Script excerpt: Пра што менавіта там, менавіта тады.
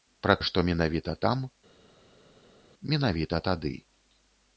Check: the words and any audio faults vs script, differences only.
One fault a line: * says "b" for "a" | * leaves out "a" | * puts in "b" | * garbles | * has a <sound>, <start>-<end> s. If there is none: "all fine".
all fine